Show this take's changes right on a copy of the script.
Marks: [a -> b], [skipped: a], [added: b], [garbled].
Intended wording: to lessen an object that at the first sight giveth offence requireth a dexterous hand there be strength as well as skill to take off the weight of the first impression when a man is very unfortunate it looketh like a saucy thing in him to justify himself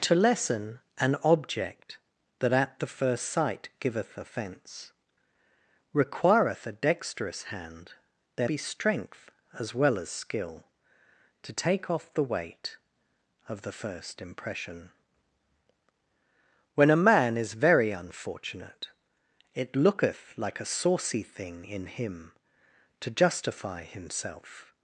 to lessen an object that at the first sight giveth offence requireth a dexterous hand there be strength as well as skill to take off the weight of the first impression when a man is very unfortunate it looketh like a saucy thing in him to justify himself